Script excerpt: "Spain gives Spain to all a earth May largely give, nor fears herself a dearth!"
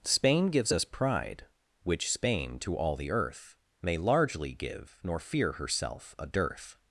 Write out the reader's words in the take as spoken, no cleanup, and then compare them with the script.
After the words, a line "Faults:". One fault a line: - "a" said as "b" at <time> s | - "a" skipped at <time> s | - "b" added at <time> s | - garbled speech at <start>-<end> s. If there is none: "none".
"Spain gives us pride which Spain to all the earth May largely give, nor fear herself a dearth!"
Faults:
- "us pride which" added at 0.7 s
- "a" said as "the" at 2.9 s
- "fears" said as "fear" at 5.2 s